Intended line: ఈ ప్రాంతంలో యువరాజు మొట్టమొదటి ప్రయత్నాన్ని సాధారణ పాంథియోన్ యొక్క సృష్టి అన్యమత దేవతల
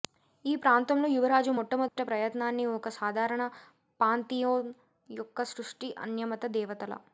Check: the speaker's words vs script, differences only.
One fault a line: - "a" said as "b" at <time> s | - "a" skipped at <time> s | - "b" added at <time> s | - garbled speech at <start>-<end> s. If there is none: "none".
- "ఒక" added at 2.7 s